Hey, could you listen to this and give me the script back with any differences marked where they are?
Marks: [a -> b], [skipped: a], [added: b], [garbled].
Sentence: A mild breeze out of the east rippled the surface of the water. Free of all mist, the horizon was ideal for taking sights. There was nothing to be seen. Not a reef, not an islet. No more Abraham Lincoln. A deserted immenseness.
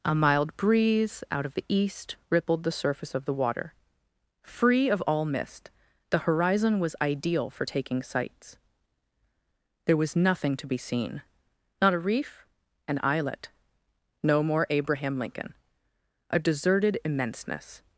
A mild breeze out of the east rippled the surface of the water. Free of all mist, the horizon was ideal for taking sights. There was nothing to be seen. Not a reef, [skipped: not] an islet. No more Abraham Lincoln. A deserted immenseness.